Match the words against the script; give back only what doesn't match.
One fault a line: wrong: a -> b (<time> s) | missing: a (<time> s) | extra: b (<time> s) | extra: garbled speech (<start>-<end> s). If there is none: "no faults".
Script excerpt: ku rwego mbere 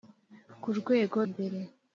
no faults